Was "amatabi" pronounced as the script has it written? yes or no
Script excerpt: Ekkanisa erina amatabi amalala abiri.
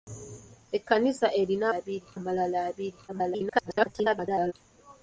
no